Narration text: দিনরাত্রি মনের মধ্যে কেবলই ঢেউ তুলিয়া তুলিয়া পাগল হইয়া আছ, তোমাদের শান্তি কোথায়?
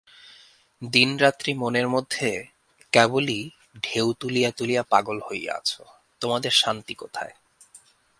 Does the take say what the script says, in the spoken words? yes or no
yes